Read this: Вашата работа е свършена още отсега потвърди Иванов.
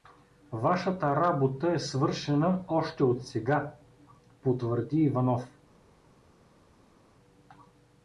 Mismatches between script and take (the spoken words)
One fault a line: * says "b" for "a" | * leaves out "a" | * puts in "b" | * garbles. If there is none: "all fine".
all fine